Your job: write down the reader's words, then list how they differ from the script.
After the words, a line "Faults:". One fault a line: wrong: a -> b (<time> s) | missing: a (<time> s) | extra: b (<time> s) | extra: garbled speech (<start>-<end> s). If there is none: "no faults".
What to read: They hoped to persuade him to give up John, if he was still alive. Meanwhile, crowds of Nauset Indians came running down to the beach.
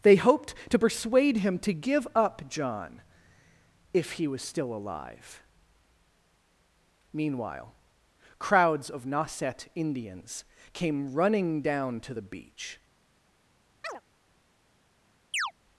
They hoped to persuade him to give up John, if he was still alive. Meanwhile, crowds of Nauset Indians came running down to the beach.
Faults:
no faults